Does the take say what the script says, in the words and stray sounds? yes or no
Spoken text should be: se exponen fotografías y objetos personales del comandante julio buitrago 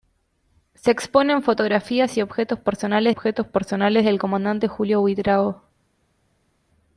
no